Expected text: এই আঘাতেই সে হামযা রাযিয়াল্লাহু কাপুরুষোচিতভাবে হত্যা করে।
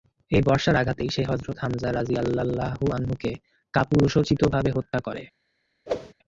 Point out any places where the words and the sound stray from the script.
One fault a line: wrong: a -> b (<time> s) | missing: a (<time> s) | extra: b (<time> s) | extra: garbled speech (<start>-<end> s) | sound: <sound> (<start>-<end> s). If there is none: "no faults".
extra: বর্শার (0.4 s)
extra: হযরত (1.2 s)
extra: আনহু-কে (2.9 s)
sound: whoosh (5.9-6.1 s)